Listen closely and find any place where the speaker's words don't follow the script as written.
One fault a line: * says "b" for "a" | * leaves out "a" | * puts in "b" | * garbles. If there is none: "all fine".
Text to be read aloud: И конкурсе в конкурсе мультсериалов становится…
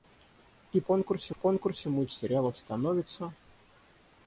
all fine